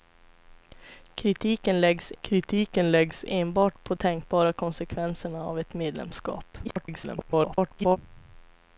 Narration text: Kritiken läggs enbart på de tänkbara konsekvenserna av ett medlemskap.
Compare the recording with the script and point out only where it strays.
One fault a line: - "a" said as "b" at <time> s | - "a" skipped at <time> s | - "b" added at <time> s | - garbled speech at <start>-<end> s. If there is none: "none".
- "kritiken läggs" added at 2.2 s
- "de" skipped at 4.0 s
- garbled speech at 6.6-8.0 s